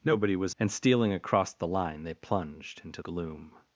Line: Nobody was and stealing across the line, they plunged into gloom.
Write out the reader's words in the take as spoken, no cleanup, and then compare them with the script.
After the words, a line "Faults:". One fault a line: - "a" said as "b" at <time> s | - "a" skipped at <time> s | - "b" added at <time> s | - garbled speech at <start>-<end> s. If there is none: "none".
Nobody was and stealing across the line, they plunged into gloom.
Faults:
none